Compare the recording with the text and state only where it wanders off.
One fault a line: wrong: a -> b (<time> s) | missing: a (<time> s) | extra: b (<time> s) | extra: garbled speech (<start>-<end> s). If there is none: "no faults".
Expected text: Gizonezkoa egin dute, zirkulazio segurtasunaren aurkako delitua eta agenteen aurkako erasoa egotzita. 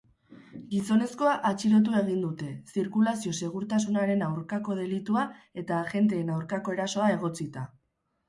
extra: atxilotu (1.5 s)